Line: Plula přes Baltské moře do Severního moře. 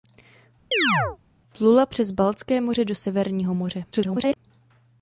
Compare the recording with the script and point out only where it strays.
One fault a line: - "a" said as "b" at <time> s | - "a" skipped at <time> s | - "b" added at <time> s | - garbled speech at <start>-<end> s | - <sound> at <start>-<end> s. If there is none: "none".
- chirp at 0.7-1.2 s
- garbled speech at 3.9-4.4 s